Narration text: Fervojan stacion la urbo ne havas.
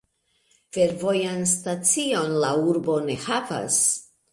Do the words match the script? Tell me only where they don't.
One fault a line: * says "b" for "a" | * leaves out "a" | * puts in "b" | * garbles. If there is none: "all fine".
all fine